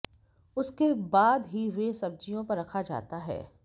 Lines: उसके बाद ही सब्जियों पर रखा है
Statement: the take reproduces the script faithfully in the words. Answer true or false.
false